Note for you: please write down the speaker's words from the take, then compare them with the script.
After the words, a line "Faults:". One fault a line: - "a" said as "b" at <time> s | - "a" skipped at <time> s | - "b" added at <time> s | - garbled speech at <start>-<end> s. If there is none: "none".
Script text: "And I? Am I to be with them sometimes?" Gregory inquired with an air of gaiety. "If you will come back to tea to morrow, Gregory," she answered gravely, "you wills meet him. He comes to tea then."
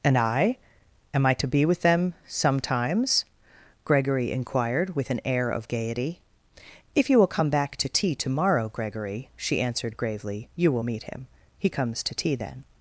"And I? Am I to be with them sometimes?" Gregory inquired with an air of gaiety. "If you will come back to tea to morrow, Gregory," she answered gravely, "you will meet him. He comes to tea then."
Faults:
- "wills" said as "will" at 10.7 s